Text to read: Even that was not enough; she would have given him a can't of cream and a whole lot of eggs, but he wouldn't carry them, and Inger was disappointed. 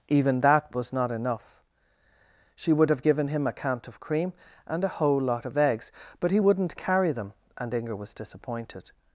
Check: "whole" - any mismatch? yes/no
no